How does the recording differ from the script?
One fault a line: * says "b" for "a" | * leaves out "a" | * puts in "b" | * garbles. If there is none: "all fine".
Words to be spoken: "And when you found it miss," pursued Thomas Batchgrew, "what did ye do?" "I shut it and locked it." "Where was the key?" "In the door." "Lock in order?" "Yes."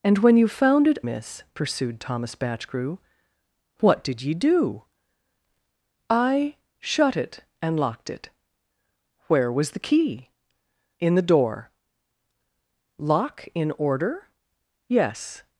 all fine